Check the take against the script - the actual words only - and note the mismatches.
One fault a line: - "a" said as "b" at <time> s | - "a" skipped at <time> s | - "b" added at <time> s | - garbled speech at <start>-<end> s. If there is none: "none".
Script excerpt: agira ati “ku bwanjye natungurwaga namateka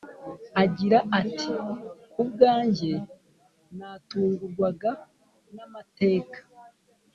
none